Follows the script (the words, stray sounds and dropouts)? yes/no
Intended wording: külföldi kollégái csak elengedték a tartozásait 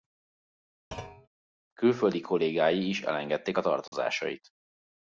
no